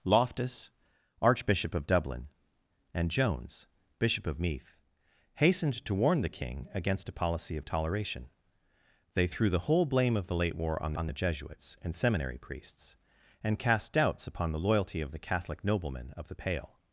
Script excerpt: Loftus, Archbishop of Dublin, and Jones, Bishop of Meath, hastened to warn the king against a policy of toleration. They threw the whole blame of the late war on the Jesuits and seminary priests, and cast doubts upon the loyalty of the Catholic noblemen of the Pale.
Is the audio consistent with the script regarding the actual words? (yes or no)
no